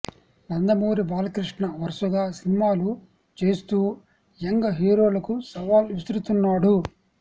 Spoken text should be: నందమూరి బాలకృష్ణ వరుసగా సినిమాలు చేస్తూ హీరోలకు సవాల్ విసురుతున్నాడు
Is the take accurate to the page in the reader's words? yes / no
no